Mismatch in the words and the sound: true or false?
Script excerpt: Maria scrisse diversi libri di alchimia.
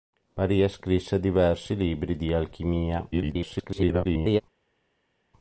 true